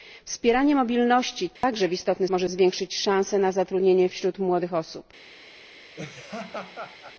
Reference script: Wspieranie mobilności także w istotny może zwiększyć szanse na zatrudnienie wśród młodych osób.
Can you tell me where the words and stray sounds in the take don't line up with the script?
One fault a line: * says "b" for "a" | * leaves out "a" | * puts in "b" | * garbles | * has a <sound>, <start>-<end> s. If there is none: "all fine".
* has a dropout, 1.6-1.6 s
* has a laugh, 6.0-7.2 s